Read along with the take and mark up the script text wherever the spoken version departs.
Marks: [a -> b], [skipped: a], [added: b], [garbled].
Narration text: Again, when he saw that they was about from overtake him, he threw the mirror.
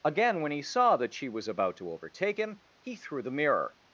Again, when he saw that [they -> she] was about [from -> to] overtake him, he threw the mirror.